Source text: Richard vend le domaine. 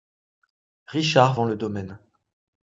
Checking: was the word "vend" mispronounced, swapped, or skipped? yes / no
no